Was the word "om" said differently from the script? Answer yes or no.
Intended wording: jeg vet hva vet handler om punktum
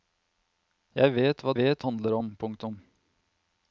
no